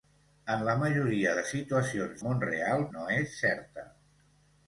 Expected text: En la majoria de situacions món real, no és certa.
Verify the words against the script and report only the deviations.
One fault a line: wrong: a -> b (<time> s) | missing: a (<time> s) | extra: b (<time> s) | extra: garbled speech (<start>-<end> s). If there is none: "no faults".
no faults